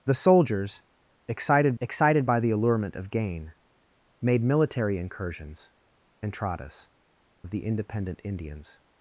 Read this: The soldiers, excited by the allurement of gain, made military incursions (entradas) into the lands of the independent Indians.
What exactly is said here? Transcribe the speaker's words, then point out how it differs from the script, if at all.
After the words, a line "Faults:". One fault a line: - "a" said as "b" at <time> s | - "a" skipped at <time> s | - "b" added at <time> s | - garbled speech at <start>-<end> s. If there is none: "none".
The soldiers, excited excited by the allurement of gain, made military incursions (entradas) of the independent Indians.
Faults:
- "excited" added at 1.8 s
- "into the lands" skipped at 6.9 s